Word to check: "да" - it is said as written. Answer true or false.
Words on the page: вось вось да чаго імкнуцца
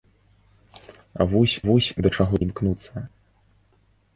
true